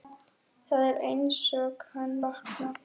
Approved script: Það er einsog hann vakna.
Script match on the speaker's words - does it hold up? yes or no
yes